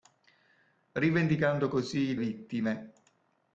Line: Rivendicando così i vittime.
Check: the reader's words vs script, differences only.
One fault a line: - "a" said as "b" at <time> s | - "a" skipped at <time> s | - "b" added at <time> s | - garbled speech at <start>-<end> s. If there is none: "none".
none